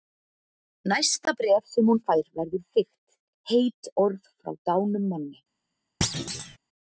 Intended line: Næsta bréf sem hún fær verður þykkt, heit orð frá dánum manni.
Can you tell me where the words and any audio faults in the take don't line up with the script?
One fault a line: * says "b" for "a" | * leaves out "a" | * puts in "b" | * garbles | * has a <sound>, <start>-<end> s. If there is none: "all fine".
* has a thud, 6.0-6.6 s